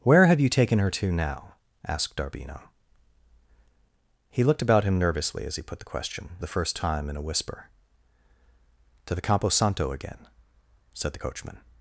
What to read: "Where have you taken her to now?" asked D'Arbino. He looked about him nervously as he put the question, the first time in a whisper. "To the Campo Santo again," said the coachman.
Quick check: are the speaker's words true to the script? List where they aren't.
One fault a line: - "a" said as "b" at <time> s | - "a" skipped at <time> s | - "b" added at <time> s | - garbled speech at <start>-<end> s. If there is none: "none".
none